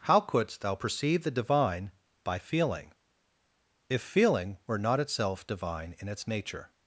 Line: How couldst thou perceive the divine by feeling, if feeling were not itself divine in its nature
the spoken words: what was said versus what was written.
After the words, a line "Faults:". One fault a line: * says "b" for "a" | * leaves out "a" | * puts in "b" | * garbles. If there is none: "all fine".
How couldst thou perceive the divine by feeling, if feeling were not itself divine in its nature
Faults:
all fine